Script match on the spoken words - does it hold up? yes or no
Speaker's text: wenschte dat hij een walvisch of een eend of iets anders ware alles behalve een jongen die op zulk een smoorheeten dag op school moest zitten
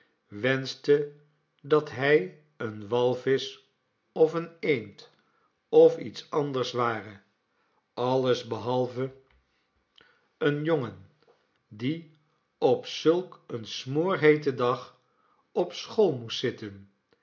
yes